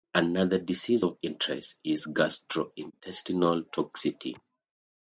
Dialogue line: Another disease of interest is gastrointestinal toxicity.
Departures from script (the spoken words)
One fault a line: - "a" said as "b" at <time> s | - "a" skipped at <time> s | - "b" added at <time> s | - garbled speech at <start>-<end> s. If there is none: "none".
none